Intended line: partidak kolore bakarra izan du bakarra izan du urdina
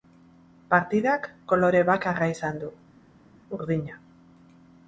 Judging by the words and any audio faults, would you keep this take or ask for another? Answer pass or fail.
fail